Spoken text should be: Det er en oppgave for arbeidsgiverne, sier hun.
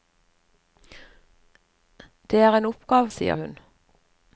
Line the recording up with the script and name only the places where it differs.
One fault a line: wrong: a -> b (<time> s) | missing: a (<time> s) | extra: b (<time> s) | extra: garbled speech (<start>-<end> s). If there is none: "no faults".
missing: for arbeidsgiverne (3.1 s)